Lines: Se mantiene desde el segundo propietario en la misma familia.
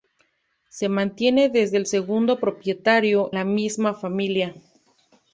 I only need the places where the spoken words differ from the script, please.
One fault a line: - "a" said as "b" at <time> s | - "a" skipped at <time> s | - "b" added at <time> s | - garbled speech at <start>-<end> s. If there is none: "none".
- "en" skipped at 3.3 s